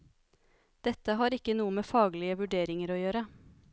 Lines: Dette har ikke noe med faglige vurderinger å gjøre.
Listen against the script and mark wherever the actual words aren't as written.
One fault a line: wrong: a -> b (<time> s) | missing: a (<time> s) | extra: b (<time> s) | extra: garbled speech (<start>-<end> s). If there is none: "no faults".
no faults